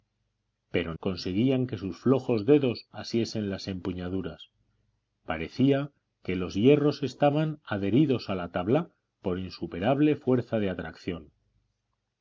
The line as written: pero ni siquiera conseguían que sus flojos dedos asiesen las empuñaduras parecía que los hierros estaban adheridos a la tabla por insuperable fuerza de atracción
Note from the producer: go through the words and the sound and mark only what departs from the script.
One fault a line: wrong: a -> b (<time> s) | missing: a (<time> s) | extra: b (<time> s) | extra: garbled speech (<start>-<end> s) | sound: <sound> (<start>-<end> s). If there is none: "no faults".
missing: ni siquiera (0.9 s)